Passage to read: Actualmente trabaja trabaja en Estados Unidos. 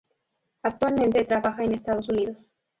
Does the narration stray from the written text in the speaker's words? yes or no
yes